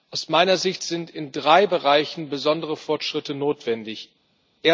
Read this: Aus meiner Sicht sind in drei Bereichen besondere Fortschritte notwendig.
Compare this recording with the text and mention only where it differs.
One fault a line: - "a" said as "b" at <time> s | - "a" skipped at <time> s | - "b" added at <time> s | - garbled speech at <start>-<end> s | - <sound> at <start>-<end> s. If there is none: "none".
none